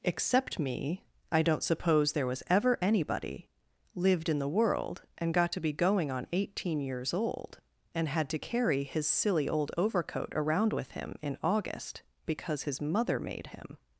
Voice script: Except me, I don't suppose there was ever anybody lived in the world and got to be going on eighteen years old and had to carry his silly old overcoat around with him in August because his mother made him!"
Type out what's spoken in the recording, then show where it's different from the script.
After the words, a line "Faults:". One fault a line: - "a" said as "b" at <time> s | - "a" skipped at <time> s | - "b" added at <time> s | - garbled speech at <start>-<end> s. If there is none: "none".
Except me, I don't suppose there was ever anybody lived in the world and got to be going on eighteen years old and had to carry his silly old overcoat around with him in August because his mother made him!"
Faults:
none